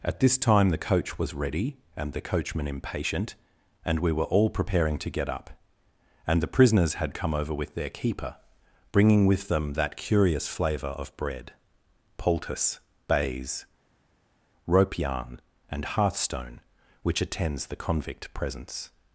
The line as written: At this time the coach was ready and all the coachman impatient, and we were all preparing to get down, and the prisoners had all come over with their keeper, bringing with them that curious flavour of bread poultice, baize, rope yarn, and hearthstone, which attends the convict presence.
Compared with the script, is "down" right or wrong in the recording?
wrong